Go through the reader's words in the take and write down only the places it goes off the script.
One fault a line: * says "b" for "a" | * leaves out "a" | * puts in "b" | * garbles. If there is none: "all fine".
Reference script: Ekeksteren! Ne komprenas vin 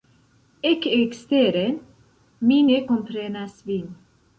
* puts in "Mi"